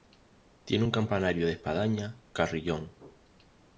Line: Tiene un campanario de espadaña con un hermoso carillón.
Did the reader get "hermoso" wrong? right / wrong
wrong